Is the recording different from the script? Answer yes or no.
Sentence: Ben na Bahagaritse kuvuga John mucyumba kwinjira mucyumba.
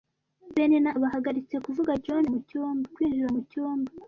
no